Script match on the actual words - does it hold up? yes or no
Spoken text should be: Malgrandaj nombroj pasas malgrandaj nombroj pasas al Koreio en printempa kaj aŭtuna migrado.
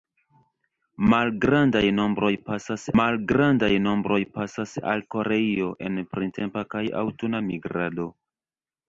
yes